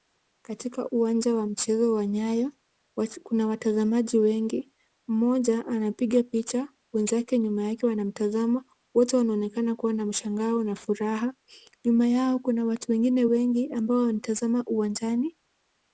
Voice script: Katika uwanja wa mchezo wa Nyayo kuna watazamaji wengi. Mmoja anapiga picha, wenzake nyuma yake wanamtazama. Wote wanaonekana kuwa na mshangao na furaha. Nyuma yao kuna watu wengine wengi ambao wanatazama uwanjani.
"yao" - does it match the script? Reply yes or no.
yes